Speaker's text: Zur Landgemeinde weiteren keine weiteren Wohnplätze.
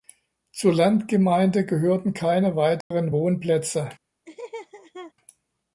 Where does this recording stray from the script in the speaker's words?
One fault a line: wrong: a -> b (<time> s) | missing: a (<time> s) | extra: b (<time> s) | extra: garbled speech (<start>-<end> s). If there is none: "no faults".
wrong: weiteren -> gehörten (1.6 s)